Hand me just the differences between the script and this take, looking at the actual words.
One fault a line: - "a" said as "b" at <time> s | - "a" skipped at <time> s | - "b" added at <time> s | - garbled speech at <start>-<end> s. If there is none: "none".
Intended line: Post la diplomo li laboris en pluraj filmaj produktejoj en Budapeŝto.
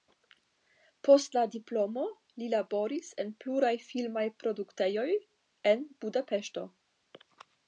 none